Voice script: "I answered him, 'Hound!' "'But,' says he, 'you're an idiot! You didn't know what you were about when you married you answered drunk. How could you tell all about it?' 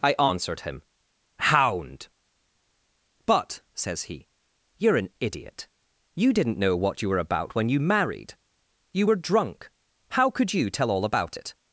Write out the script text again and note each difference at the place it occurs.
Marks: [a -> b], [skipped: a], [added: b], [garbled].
"I answered him, 'Hound!' "'But,' says he, 'you're an idiot! You didn't know what you were about when you married you [answered -> were] drunk. How could you tell all about it?'